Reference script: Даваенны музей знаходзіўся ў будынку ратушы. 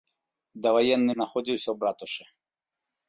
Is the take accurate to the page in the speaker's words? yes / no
no